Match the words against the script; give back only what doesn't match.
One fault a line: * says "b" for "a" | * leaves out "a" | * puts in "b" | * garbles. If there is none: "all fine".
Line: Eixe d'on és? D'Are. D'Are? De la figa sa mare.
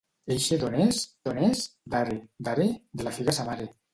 * puts in "d'on és"